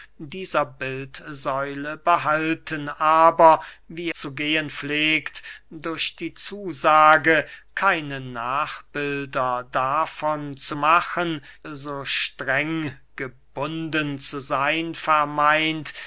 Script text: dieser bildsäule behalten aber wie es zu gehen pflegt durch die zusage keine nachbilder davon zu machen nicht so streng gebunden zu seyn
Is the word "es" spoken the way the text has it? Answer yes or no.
no